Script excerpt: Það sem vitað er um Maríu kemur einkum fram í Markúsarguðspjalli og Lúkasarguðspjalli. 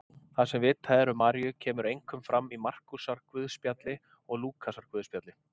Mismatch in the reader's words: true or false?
false